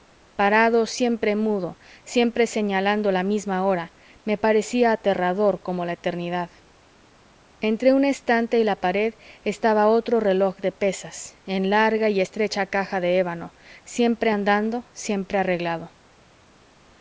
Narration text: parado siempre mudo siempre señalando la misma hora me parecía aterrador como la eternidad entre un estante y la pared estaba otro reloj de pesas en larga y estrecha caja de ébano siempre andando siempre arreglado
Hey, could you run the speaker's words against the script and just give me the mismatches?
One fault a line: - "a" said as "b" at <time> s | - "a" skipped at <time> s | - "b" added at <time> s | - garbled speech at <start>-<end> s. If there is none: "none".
none